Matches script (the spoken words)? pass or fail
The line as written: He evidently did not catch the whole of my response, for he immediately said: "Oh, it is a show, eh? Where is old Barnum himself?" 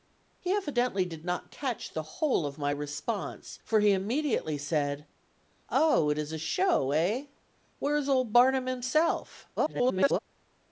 fail